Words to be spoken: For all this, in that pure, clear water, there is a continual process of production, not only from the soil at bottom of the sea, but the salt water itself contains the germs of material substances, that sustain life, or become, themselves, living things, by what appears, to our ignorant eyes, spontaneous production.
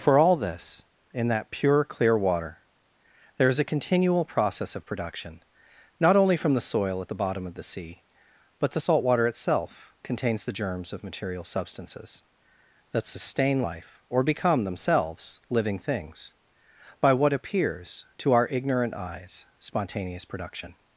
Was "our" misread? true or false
false